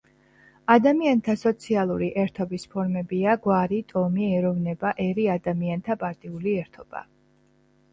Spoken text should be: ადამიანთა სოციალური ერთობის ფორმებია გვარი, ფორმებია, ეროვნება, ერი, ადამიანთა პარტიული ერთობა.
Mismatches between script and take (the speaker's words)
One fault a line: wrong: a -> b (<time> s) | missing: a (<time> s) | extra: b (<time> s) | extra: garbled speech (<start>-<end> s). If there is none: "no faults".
wrong: ფორმებია -> ტომი (3.9 s)